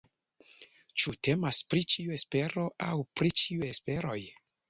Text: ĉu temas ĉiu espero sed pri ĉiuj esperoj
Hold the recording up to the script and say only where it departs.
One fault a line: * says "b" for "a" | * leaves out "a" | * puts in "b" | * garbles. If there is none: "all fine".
* puts in "pri"
* says "aŭ" for "sed"